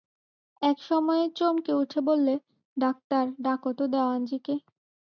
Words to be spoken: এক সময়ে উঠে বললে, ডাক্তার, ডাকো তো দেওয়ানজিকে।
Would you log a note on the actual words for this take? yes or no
yes